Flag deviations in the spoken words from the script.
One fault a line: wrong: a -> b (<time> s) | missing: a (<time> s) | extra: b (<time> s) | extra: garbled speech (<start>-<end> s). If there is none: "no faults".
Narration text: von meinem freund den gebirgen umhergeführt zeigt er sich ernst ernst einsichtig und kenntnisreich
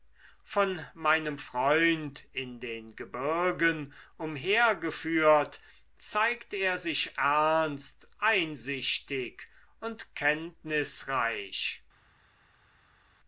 extra: in (2.3 s)
missing: ernst (8.1 s)